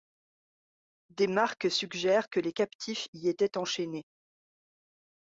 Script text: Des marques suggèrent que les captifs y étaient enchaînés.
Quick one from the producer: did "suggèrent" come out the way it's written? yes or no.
yes